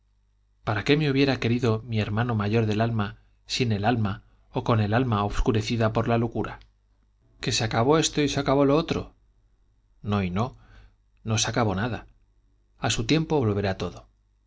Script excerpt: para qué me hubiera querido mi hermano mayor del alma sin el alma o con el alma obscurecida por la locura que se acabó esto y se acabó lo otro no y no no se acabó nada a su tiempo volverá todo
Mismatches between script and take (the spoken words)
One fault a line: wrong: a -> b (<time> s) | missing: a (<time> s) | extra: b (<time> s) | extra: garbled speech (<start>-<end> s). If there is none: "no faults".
no faults